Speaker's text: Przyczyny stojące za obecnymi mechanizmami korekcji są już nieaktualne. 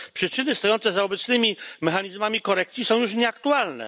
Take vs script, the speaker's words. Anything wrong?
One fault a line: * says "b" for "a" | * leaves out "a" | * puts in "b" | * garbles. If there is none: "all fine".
all fine